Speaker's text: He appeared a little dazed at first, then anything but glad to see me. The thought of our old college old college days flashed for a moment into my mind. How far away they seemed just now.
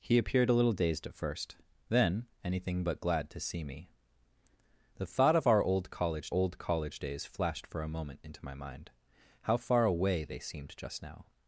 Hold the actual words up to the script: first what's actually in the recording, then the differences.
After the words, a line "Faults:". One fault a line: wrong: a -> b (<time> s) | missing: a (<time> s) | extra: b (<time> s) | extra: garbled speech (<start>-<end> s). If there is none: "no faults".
He appeared a little dazed at first, then anything but glad to see me. The thought of our old college old college days flashed for a moment into my mind. How far away they seemed just now.
Faults:
no faults